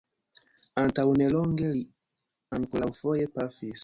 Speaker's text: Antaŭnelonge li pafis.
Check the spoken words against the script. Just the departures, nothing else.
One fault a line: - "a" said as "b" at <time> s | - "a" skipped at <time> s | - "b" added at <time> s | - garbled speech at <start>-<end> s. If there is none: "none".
- "ankoraŭfoje" added at 2.6 s